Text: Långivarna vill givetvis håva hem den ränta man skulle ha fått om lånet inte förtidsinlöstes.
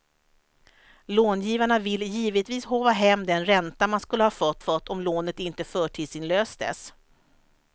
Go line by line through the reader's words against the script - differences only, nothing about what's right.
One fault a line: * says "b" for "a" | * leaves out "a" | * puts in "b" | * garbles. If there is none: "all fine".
* puts in "fått"